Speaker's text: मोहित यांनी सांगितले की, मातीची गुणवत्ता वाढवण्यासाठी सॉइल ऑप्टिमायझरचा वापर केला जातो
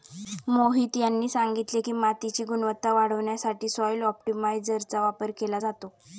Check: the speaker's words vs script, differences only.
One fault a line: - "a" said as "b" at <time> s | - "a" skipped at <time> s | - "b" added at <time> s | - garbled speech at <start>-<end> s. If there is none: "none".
none